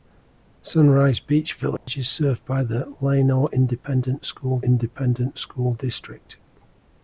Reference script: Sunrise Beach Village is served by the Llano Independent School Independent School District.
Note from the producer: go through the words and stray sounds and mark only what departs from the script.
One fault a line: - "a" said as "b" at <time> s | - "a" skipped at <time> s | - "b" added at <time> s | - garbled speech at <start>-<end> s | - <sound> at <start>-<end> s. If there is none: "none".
- dropout at 1.8-1.9 s